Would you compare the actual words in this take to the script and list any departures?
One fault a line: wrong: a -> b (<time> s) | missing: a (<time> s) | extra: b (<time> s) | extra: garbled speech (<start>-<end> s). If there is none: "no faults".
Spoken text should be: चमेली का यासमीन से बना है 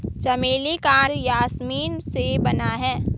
no faults